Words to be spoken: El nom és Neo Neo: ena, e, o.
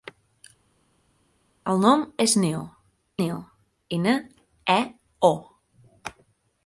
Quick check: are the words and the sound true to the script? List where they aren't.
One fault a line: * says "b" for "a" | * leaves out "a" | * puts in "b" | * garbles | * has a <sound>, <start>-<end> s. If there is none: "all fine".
all fine